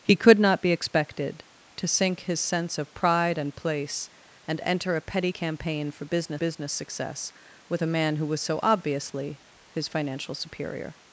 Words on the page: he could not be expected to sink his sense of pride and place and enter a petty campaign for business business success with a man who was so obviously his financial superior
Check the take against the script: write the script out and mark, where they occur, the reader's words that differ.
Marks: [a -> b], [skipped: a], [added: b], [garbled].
he could not be expected to sink his sense of pride and place and enter a petty campaign for business business success with a man who was so obviously his financial superior